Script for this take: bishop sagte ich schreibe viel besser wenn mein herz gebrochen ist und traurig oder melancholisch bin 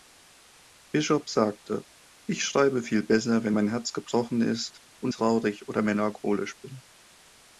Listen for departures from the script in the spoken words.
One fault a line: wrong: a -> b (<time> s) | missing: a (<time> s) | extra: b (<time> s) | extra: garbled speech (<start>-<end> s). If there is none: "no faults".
no faults